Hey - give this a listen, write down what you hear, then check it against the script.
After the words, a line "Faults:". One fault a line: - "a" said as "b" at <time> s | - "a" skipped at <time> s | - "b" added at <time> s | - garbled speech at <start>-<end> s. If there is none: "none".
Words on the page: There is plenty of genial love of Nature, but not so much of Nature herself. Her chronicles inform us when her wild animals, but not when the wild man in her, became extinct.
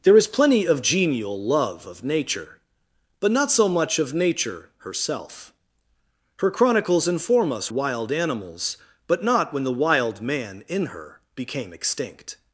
There is plenty of genial love of Nature, but not so much of Nature herself. Her chronicles inform us wild animals, but not when the wild man in her, became extinct.
Faults:
- "when her" skipped at 7.7 s